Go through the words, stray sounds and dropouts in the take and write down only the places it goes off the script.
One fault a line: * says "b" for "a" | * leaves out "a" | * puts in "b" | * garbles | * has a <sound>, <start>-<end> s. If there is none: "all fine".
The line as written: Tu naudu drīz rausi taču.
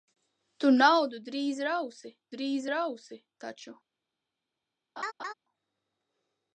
* puts in "drīz rausi"
* has a laugh, 5.0-5.3 s